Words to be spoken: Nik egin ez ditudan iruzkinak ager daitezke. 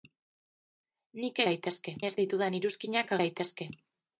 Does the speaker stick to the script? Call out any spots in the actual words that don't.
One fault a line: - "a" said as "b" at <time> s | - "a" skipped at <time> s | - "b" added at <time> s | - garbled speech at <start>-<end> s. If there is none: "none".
- "egin" said as "daitezke" at 1.5 s
- "ager" skipped at 3.1 s